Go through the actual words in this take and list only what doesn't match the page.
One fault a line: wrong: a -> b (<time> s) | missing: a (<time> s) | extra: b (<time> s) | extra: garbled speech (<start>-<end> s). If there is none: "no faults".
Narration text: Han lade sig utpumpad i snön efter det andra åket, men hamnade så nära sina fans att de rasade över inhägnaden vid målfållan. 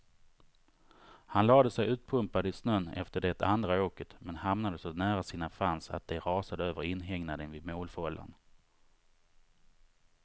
no faults